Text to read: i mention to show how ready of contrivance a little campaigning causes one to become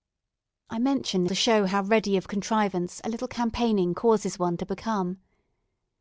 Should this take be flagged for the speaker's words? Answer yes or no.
no